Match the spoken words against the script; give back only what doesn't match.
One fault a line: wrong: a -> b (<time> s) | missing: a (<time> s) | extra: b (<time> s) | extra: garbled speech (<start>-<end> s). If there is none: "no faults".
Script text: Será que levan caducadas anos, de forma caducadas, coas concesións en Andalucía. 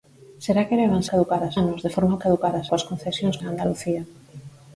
no faults